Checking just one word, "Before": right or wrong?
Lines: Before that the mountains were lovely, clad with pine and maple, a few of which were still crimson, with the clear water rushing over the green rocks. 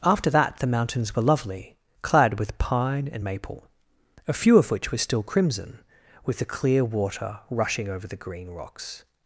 wrong